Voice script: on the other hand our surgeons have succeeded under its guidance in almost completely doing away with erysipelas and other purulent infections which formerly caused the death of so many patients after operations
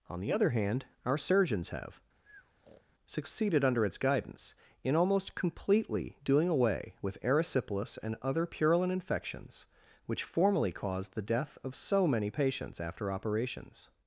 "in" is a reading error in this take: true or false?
false